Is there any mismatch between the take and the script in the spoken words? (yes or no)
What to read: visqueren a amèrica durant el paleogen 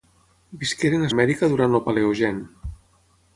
no